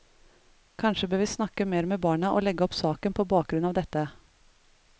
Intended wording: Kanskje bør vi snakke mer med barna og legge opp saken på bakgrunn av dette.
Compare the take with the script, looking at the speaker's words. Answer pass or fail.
pass